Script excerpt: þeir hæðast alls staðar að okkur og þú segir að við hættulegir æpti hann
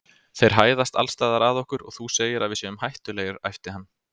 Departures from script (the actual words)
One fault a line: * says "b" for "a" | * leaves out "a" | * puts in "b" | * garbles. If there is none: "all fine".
* puts in "séum"